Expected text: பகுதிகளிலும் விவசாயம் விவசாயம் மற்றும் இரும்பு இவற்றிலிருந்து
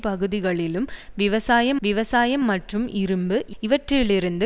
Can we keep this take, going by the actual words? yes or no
yes